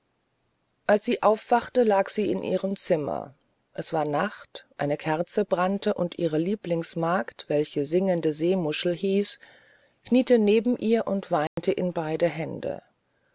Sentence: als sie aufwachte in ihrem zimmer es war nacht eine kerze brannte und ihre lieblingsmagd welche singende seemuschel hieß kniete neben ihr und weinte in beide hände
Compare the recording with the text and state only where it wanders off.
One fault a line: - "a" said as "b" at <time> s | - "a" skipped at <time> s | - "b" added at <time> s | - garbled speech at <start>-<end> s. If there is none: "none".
- "lag sie" added at 1.8 s